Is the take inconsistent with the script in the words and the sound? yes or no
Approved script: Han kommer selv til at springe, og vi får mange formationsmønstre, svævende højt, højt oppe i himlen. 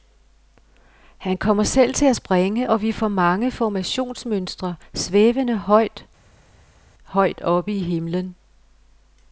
no